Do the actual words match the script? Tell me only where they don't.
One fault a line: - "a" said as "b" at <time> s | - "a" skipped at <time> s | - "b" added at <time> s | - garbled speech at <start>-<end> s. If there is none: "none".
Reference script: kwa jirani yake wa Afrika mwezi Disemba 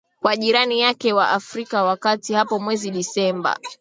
- "ya kati hapo" added at 1.8 s